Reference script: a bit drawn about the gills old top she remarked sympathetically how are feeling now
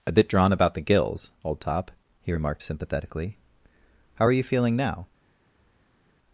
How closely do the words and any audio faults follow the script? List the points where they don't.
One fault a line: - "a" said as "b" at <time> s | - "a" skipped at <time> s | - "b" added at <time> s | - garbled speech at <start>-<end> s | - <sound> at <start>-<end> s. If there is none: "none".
- "she" said as "he" at 2.2 s
- "you" added at 4.3 s